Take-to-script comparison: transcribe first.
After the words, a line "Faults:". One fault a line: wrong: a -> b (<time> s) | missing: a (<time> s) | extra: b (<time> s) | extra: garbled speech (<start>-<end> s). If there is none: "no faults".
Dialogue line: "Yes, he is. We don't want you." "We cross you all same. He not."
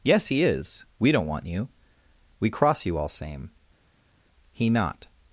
"Yes, he is. We don't want you." "We cross you all same. He not."
Faults:
no faults